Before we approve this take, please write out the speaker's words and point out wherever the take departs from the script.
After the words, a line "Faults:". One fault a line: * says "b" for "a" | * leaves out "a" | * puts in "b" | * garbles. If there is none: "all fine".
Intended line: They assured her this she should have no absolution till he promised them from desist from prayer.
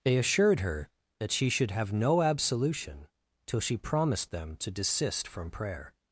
They assured her that she should have no absolution till she promised them to desist from prayer.
Faults:
* says "that" for "this"
* says "she" for "he"
* says "to" for "from"